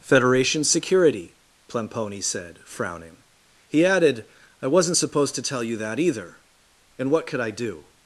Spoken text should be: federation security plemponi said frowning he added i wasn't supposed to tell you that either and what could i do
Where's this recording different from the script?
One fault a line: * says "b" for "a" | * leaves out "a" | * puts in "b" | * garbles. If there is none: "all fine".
all fine